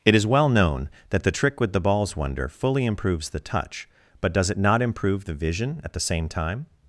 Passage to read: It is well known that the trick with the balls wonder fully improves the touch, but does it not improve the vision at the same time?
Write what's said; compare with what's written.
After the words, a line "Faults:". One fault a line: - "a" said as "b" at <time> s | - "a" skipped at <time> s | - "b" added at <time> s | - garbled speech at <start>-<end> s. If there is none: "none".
It is well known that the trick with the balls wonder fully improves the touch, but does it not improve the vision at the same time?
Faults:
none